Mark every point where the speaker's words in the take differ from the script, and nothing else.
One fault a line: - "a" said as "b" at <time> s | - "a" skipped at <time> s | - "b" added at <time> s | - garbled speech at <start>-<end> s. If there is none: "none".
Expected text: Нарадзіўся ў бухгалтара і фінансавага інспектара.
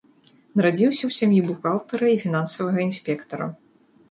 - "сям'і" added at 1.2 s